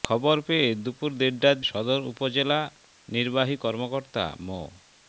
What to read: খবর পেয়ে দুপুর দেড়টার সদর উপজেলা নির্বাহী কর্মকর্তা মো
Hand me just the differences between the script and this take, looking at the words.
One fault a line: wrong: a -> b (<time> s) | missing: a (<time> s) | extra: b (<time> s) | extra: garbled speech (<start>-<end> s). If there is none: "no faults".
no faults